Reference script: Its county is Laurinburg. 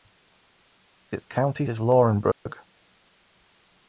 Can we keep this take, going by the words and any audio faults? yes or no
no